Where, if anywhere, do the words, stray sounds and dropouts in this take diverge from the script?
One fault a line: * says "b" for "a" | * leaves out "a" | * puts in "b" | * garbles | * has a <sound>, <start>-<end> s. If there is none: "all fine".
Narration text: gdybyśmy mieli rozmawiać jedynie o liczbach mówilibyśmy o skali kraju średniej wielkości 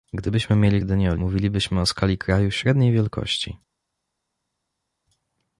* leaves out "rozmawiać"
* leaves out "liczbach"